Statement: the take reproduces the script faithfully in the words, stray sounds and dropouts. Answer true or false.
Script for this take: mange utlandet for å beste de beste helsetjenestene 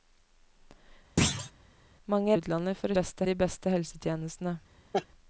false